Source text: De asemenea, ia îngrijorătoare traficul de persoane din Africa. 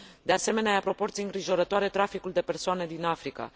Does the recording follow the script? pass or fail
fail